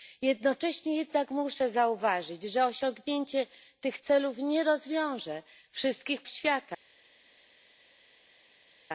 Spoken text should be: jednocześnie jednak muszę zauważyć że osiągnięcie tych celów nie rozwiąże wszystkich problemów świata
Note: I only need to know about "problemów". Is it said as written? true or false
false